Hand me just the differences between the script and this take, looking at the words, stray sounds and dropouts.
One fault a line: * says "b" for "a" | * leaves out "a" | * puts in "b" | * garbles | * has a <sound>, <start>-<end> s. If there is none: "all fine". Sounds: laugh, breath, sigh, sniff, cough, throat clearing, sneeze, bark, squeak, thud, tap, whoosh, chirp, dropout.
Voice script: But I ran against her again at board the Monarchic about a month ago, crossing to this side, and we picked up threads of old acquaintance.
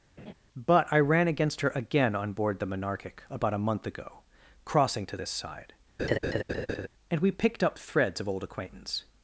* has a laugh, 0.2-0.3 s
* says "on" for "at"
* has a laugh, 6.0-6.9 s